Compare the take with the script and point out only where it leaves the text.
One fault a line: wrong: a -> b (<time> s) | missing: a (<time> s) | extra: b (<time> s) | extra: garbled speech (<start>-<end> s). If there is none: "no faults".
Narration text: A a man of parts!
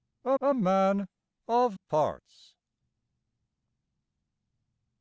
no faults